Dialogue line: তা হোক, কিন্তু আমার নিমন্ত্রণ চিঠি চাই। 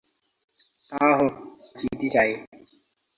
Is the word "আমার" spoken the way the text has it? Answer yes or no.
no